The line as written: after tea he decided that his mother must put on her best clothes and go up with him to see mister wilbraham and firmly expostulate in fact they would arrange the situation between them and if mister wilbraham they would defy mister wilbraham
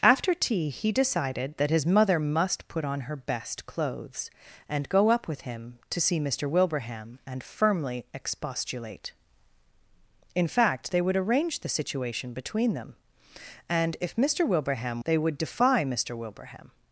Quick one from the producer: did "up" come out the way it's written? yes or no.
yes